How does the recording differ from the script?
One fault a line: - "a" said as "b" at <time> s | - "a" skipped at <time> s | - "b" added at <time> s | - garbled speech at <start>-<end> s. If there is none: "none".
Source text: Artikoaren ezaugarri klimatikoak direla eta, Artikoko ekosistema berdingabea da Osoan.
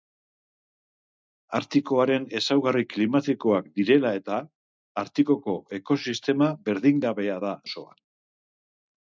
none